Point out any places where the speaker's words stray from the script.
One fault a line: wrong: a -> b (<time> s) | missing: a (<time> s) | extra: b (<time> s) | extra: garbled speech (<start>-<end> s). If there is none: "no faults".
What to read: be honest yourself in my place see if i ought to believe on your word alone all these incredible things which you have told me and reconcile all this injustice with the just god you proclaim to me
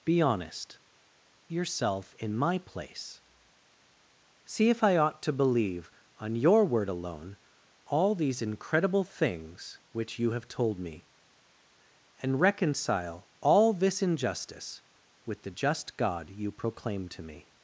no faults